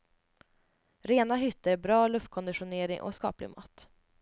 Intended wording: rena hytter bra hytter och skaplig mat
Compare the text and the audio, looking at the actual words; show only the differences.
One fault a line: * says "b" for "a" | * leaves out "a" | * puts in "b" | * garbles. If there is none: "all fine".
* says "luftkonditionering" for "hytter"